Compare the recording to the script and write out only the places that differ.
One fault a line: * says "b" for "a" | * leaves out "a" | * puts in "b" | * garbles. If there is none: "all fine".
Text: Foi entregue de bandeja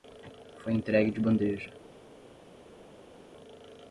all fine